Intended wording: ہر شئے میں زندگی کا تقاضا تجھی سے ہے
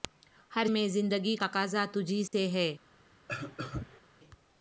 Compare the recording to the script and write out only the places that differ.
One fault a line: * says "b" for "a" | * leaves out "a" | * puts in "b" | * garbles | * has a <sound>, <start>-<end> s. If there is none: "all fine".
* leaves out "شئے"
* leaves out "کا"
* has a dropout, 2.3-2.3 s
* has a cough, 3.3-4.0 s